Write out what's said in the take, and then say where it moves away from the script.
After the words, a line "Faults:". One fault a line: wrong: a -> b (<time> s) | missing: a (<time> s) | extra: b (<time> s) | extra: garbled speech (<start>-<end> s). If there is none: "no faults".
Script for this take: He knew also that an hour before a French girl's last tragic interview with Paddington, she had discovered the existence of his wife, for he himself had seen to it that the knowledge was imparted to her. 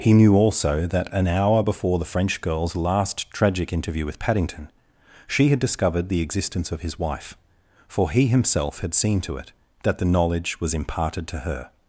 He knew also that an hour before the French girl's last tragic interview with Paddington, she had discovered the existence of his wife, for he himself had seen to it that the knowledge was imparted to her.
Faults:
wrong: a -> the (2.0 s)